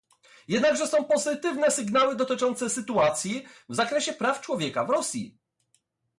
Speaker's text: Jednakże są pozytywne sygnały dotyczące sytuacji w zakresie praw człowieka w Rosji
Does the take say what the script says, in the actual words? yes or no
yes